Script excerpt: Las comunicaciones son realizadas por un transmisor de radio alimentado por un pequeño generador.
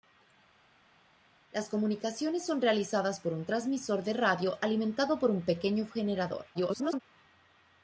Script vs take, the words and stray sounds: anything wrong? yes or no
yes